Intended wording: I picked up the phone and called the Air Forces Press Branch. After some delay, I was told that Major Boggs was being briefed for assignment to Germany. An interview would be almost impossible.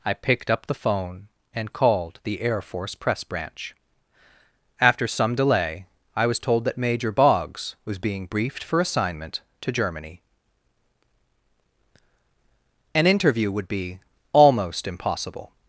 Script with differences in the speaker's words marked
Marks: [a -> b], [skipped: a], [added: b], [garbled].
I picked up the phone and called the Air [Forces -> Force] Press Branch. After some delay, I was told that Major Boggs was being briefed for assignment to Germany. An interview would be almost impossible.